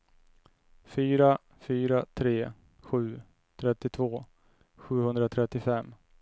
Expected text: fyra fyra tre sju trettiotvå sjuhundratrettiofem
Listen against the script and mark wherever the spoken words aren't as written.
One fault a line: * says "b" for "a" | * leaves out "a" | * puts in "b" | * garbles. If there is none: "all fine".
all fine